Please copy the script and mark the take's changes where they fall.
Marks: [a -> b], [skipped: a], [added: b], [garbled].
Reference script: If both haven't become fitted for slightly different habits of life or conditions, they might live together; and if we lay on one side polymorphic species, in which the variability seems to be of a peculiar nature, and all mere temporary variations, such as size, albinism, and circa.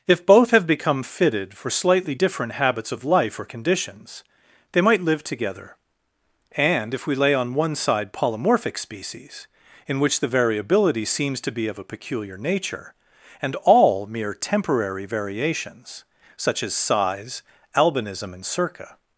If both [haven't -> have] become fitted for slightly different habits of life or conditions, they might live together; and if we lay on one side polymorphic species, in which the variability seems to be of a peculiar nature, and all mere temporary variations, such as size, albinism, and circa.